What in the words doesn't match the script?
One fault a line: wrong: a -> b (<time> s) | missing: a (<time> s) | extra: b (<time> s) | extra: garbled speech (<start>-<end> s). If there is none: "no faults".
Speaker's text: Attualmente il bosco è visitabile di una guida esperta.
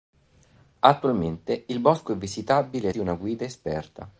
no faults